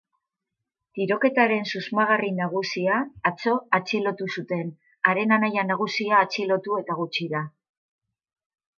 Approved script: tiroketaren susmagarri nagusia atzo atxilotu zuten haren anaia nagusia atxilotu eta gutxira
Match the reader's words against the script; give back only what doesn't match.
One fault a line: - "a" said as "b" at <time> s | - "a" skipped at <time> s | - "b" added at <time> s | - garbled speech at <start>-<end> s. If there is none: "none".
none